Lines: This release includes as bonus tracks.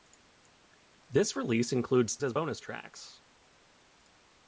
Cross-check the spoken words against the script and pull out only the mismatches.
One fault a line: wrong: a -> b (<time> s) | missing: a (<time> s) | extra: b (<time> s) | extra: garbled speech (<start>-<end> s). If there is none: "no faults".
no faults